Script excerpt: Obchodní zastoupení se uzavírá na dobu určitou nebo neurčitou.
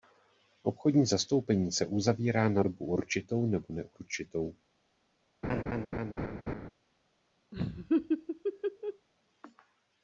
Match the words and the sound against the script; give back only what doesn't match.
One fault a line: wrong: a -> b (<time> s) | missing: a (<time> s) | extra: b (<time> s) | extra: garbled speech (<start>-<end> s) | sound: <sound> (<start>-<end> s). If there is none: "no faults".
sound: laugh (5.4-6.7 s)
sound: laugh (7.5-9.1 s)